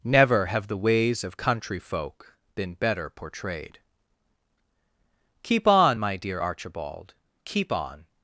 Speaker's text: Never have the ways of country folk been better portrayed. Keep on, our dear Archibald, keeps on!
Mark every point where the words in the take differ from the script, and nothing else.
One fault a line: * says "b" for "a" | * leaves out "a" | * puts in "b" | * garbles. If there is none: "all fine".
* says "my" for "our"
* says "keep" for "keeps"